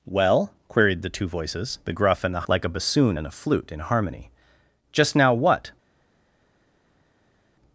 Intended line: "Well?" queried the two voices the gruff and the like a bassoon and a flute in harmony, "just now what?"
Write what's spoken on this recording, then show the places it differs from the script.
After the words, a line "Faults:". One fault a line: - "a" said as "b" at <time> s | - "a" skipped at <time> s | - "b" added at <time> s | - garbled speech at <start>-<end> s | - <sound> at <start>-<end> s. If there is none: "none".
"Well?" queried the two voices the gruff and the like a bassoon and a flute in harmony, "just now what?"
Faults:
none